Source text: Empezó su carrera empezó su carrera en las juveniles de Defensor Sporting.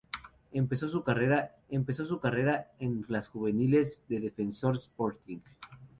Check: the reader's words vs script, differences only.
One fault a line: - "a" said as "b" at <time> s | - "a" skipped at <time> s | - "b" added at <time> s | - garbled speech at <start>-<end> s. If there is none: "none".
none